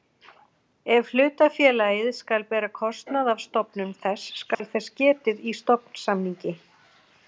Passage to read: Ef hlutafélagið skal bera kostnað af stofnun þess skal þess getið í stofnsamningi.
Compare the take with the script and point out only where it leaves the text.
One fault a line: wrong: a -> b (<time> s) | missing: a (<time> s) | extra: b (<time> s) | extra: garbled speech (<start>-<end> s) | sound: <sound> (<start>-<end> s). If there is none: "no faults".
sound: dropout (4.5-4.6 s)